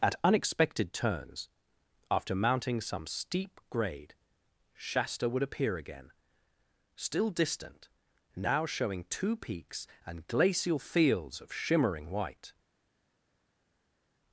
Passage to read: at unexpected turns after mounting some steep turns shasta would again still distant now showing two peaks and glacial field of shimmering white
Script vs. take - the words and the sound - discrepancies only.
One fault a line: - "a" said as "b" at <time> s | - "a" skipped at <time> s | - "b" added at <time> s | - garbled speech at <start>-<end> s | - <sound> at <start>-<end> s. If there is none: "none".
- "turns" said as "grade" at 3.7 s
- "appear" added at 5.4 s
- "field" said as "fields" at 10.8 s